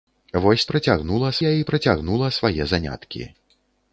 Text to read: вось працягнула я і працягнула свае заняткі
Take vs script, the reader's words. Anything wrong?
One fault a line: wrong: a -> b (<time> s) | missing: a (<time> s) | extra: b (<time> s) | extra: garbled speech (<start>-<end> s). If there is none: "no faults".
no faults